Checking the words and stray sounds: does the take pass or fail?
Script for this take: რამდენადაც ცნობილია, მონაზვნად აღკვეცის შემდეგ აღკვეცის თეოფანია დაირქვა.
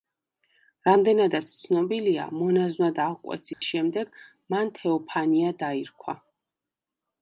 fail